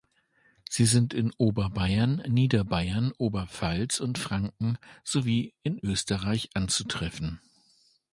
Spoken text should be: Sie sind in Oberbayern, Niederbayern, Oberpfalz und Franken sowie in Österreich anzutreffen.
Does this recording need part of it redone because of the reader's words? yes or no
no